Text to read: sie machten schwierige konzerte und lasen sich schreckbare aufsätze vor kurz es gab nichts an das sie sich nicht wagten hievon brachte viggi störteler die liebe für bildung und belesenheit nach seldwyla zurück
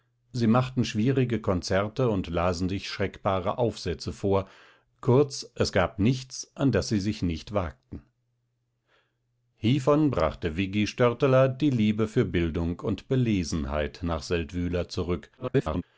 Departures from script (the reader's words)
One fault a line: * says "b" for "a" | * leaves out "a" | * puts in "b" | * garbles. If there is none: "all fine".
* garbles